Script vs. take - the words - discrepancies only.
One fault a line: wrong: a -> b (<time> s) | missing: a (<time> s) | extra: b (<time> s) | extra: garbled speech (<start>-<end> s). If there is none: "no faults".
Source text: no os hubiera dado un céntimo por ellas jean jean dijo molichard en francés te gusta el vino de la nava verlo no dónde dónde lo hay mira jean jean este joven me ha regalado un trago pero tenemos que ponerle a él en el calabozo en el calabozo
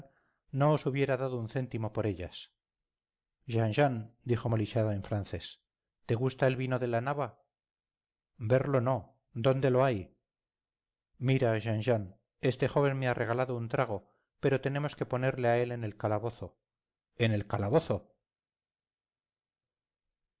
missing: dónde (9.7 s)